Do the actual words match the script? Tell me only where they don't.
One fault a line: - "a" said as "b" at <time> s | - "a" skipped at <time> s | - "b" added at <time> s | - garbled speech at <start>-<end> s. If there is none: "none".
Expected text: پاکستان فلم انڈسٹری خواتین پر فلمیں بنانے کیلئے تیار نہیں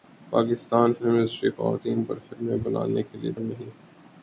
- "تیار" skipped at 3.3 s